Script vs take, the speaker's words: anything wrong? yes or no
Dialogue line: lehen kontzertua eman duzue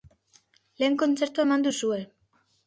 no